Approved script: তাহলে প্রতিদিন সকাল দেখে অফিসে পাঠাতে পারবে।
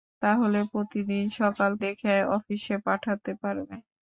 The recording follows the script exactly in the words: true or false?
true